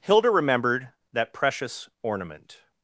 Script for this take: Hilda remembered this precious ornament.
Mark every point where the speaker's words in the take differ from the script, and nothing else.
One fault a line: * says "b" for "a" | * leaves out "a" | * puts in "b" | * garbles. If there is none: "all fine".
* says "that" for "this"